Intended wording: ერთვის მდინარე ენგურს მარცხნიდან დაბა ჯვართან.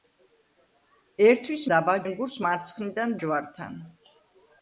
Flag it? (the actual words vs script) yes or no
yes